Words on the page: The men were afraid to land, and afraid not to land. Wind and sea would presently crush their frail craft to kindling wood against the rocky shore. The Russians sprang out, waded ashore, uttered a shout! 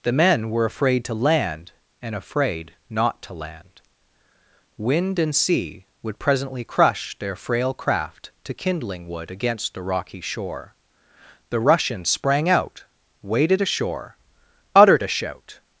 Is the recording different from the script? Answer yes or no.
no